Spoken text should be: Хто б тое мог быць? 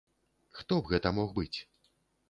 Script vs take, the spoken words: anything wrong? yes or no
yes